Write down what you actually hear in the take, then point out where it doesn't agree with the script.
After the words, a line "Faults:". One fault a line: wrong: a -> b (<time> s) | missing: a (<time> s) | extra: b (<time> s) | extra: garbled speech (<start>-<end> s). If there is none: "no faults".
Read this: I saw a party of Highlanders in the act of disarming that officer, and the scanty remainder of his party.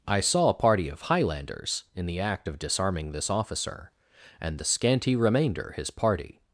I saw a party of Highlanders in the act of disarming this officer, and the scanty remainder his party.
Faults:
wrong: that -> this (3.1 s)
missing: of (5.7 s)